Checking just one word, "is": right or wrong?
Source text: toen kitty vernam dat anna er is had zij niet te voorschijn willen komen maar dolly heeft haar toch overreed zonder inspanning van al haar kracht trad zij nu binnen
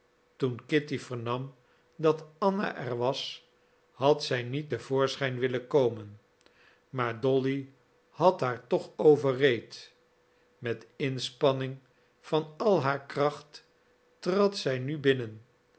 wrong